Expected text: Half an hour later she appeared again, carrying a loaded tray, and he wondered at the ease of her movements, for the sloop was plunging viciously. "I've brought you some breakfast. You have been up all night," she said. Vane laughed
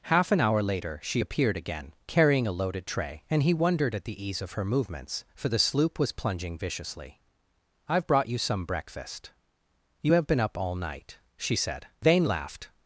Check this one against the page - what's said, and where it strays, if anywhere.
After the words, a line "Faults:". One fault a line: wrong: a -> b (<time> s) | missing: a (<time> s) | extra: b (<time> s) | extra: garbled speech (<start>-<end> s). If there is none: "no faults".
Half an hour later she appeared again, carrying a loaded tray, and he wondered at the ease of her movements, for the sloop was plunging viciously. "I've brought you some breakfast. You have been up all night," she said. Vane laughed
Faults:
no faults